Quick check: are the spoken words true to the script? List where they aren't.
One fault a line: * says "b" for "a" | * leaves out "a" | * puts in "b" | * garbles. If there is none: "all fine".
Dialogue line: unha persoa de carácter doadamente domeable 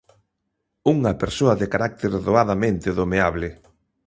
all fine